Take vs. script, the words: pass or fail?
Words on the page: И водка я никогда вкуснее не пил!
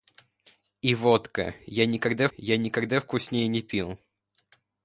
fail